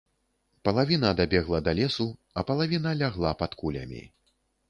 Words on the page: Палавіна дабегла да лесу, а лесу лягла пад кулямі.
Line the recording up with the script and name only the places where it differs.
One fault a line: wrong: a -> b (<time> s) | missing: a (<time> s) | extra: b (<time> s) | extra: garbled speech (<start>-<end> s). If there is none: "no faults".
wrong: лесу -> палавіна (2.5 s)